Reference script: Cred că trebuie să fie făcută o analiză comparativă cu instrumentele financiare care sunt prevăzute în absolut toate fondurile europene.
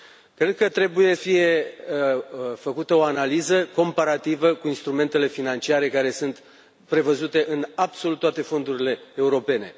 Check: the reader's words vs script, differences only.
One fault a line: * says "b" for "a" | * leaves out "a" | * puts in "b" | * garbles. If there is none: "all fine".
* leaves out "să"